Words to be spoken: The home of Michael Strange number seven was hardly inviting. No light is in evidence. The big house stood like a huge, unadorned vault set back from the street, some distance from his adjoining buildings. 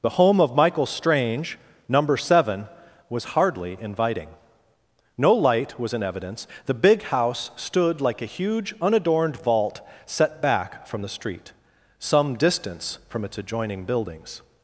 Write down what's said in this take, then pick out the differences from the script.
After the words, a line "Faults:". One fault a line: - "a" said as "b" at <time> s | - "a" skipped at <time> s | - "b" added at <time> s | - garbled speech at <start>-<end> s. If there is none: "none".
The home of Michael Strange number seven was hardly inviting. No light was in evidence. The big house stood like a huge, unadorned vault set back from the street, some distance from its adjoining buildings.
Faults:
- "is" said as "was" at 5.8 s
- "his" said as "its" at 13.2 s